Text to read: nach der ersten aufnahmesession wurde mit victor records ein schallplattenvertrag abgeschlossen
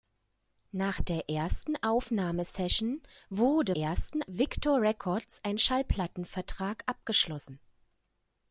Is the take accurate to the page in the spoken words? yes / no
no